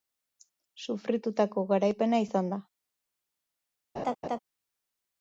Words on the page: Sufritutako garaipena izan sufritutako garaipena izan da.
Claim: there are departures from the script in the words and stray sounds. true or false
true